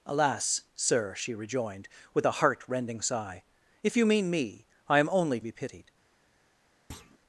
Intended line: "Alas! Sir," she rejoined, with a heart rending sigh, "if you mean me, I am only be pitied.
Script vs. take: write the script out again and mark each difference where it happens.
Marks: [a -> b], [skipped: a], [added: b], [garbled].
"Alas! Sir," she rejoined, with a heart rending sigh, "if you mean me, I am only be pitied.